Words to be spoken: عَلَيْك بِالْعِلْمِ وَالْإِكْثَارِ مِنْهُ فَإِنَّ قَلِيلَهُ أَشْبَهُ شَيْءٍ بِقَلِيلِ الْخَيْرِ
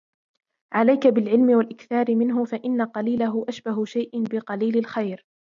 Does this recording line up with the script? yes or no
yes